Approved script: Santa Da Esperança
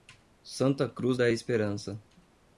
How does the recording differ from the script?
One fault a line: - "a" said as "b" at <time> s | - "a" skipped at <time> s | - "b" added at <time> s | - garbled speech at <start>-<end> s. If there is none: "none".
- "Cruz" added at 0.9 s